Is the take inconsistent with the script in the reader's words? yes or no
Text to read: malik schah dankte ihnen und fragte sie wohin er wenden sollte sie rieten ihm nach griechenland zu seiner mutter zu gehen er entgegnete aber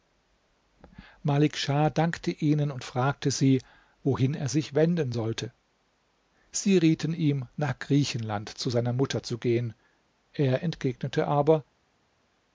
yes